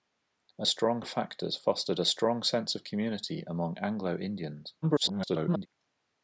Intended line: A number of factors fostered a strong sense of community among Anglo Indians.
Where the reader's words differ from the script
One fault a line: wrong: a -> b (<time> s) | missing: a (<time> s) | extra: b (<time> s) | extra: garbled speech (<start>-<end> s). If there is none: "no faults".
wrong: number -> strong (0.6 s)
extra: garbled speech (4.8-5.7 s)